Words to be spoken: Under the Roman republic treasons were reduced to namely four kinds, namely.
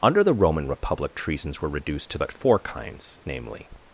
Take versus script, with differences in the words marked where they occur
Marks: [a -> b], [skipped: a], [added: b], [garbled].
Under the Roman republic treasons were reduced to [namely -> but] four kinds, namely.